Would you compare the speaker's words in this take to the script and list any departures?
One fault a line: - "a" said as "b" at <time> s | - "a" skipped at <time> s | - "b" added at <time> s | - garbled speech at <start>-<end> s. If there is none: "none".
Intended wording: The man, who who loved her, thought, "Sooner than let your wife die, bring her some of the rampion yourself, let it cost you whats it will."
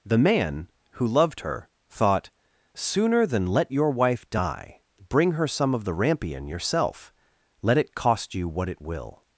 - "who" skipped at 1.1 s
- "whats" said as "what" at 8.5 s